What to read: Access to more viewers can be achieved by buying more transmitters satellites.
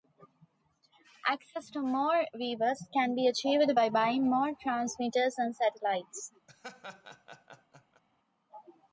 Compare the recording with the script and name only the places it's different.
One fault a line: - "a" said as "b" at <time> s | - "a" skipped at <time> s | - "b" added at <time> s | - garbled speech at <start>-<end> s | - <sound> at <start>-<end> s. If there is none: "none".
- "and" added at 5.4 s
- laugh at 6.5-8.0 s